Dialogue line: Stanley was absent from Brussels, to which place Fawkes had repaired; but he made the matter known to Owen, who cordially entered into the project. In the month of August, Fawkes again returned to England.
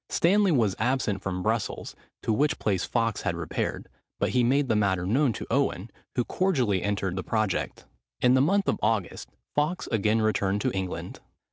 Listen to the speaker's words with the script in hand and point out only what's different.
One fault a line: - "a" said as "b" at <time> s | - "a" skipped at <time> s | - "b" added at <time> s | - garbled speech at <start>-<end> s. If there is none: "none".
- "into" skipped at 7.2 s